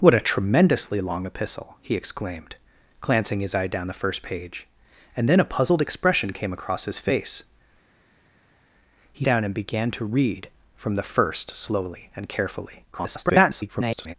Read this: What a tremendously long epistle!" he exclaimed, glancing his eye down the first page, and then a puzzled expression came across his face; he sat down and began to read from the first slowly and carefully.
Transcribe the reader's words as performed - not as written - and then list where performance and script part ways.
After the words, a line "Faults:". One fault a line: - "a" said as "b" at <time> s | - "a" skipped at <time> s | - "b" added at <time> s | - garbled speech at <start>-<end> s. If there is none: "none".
What a tremendously long epistle!" he exclaimed, glancing his eye down the first page, and then a puzzled expression came across his face; he down and began to read from the first slowly and carefully. [garbled]
Faults:
- "sat" skipped at 9.2 s
- garbled speech at 12.9-14.1 s